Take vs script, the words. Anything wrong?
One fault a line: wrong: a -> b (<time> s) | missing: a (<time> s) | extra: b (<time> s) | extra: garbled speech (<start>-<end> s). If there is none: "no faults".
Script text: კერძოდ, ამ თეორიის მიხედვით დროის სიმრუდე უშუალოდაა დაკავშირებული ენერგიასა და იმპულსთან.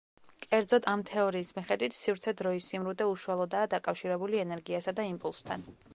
extra: სივრცე (2.0 s)